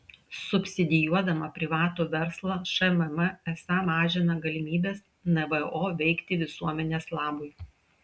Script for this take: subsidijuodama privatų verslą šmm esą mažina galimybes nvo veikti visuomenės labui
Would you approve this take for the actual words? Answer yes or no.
yes